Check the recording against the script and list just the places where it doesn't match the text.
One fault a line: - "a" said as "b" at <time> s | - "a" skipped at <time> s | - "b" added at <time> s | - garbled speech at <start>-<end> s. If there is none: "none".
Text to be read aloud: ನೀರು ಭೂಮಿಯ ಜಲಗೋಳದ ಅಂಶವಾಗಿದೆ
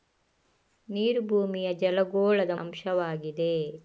none